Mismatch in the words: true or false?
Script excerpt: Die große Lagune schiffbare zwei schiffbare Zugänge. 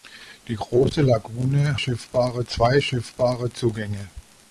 false